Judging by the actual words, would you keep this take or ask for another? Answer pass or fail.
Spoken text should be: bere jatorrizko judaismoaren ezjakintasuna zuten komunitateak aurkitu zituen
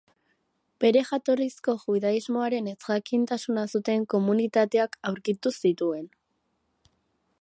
pass